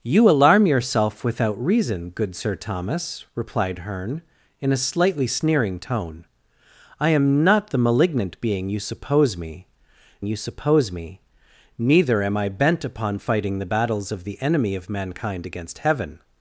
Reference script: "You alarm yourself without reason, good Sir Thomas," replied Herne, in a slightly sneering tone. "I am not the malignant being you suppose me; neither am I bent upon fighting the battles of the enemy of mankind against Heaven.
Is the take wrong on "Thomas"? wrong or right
right